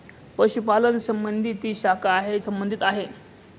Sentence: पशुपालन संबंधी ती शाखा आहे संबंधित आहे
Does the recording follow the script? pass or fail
pass